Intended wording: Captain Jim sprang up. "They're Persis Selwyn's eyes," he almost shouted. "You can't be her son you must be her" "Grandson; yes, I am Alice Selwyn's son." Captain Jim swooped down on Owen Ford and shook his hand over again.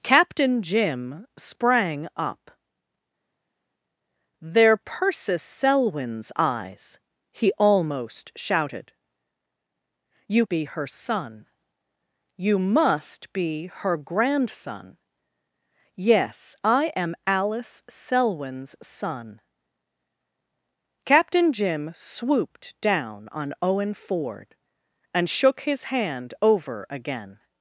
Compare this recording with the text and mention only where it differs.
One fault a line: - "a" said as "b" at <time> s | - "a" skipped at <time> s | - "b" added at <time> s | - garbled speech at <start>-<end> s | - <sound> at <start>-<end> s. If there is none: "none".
- "can't" skipped at 10.5 s